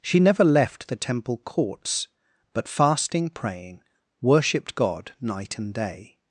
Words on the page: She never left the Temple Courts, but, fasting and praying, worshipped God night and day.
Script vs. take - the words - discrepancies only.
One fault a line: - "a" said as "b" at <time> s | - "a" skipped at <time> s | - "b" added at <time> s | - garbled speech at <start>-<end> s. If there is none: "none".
- "and" skipped at 3.3 s